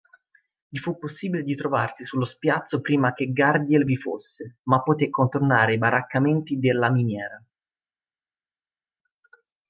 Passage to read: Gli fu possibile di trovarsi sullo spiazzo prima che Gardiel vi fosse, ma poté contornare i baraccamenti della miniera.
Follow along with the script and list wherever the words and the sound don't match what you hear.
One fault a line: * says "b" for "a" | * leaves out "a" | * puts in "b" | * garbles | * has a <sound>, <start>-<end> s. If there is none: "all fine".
all fine